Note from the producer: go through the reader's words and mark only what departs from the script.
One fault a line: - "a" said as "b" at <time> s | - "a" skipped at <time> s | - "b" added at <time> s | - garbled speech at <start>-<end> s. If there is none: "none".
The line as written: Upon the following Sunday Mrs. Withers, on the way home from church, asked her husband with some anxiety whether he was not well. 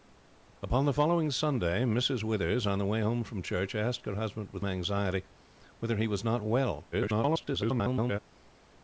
- "some" skipped at 4.7 s
- garbled speech at 6.9-8.2 s